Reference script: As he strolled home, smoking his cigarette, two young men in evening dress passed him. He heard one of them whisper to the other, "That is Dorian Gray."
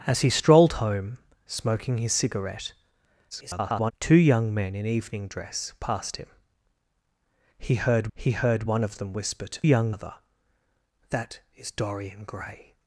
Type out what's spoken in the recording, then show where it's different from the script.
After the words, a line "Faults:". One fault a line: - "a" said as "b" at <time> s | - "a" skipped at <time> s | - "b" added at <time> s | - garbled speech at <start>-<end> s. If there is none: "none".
As he strolled home, smoking his cigarette, [garbled] two young men in evening dress passed him. He heard he heard one of them whisper to young other, "That is Dorian Gray."
Faults:
- garbled speech at 3.3-3.9 s
- "he heard" added at 8.1 s
- "the" said as "young" at 9.6 s